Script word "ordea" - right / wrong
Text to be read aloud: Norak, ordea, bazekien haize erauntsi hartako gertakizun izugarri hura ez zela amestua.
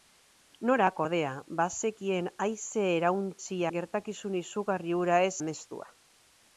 right